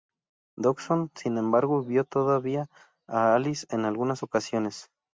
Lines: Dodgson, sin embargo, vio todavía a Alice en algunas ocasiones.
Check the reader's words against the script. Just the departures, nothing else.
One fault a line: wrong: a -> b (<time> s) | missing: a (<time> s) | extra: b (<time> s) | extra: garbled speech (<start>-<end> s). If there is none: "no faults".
no faults